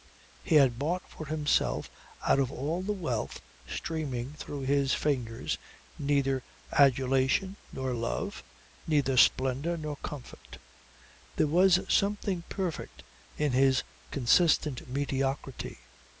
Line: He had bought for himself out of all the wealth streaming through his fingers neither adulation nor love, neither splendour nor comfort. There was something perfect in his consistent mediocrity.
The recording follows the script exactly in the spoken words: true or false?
true